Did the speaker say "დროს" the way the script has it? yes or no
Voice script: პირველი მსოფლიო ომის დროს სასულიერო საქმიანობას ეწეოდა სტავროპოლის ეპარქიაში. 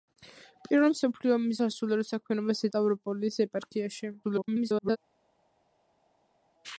no